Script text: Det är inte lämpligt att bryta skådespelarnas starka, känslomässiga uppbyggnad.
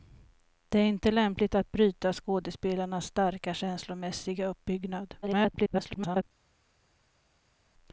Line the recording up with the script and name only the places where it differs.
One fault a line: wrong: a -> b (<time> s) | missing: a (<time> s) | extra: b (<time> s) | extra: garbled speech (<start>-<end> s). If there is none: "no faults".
extra: garbled speech (5.2-6.2 s)